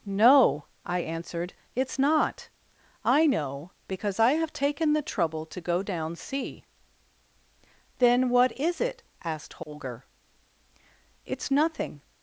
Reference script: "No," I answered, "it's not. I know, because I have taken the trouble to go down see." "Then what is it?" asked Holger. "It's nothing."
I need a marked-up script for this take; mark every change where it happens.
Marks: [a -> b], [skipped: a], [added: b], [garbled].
"No," I answered, "it's not. I know, because I have taken the trouble to go down see." "Then what is it?" asked Holger. "It's nothing."